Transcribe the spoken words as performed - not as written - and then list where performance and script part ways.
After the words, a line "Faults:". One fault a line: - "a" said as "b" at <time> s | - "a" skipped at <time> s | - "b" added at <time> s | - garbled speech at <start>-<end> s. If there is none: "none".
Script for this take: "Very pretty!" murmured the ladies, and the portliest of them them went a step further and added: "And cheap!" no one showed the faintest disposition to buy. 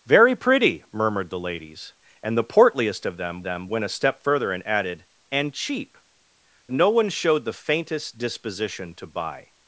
"Very pretty!" murmured the ladies, and the portliest of them them went a step further and added: "And cheap!" no one showed the faintest disposition to buy.
Faults:
none